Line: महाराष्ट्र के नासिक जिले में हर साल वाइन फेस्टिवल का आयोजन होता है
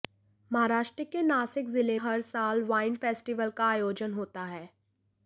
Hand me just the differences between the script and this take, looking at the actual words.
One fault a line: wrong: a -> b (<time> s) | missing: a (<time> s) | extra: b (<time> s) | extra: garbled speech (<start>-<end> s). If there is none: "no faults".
missing: में (2.0 s)